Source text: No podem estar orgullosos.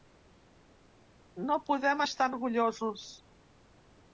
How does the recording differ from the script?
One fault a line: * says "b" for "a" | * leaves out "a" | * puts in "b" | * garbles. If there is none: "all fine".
all fine